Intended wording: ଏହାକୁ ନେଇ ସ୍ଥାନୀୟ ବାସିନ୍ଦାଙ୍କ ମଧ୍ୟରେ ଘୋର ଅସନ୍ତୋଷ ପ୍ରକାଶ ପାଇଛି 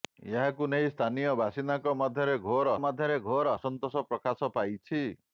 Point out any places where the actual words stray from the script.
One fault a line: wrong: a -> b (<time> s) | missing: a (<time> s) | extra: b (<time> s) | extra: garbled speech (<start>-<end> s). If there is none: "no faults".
extra: ମଧ୍ୟରେ ଘୋର (2.8 s)